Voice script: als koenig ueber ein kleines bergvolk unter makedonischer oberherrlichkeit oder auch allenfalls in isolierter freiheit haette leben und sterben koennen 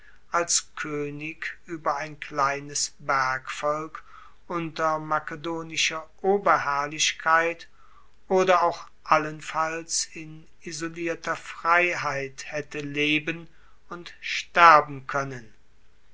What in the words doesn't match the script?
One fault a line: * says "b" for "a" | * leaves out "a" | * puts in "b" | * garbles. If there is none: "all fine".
all fine